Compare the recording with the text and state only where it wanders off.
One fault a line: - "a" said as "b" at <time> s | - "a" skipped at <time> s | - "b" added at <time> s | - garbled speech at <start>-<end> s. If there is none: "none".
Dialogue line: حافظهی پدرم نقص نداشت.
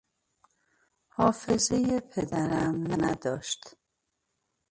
- "نقص" skipped at 2.9 s